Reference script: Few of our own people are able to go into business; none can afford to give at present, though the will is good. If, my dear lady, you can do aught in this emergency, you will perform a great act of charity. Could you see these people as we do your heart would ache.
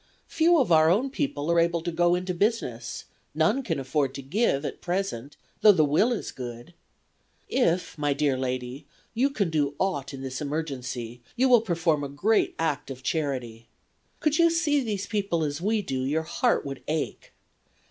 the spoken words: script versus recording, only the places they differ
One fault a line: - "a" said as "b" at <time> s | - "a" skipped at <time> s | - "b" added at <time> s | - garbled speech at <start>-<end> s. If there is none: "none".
none